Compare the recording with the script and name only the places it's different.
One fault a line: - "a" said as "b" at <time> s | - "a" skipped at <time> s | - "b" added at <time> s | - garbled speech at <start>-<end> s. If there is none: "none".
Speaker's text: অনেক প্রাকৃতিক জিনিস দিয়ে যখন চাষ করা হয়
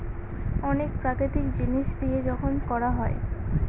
- "চাষ" skipped at 2.5 s